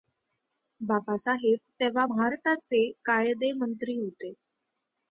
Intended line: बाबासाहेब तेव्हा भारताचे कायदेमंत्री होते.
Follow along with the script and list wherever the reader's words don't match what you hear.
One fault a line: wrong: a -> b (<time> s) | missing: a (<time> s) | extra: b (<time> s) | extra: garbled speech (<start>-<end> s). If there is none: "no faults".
no faults